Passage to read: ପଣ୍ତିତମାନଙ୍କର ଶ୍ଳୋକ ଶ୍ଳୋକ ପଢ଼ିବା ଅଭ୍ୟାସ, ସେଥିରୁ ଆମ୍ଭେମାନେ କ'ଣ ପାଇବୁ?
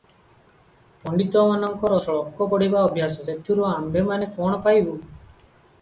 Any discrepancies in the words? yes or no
yes